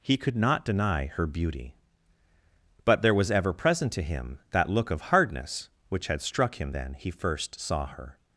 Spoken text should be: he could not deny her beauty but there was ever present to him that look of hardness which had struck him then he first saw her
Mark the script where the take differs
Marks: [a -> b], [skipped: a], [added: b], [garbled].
he could not deny her beauty but there was ever present to him that look of hardness which had struck him then he first saw her